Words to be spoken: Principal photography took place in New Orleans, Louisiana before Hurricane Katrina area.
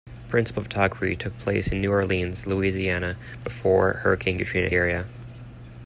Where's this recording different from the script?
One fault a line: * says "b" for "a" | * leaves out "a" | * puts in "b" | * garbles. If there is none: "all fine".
all fine